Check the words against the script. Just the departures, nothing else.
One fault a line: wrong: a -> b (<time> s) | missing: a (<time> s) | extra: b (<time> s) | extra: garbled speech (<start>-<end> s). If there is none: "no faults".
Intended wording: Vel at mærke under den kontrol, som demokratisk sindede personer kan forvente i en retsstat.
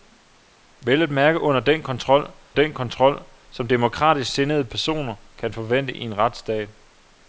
extra: den kontrol (2.5 s)